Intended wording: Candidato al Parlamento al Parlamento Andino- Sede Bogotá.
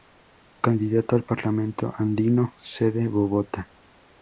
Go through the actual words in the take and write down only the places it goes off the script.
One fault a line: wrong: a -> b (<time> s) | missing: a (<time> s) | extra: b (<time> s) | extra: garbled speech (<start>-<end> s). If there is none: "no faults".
missing: al Parlamento (1.9 s)